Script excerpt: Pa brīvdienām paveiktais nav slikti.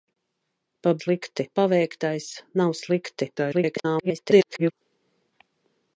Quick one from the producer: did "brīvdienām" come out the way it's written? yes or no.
no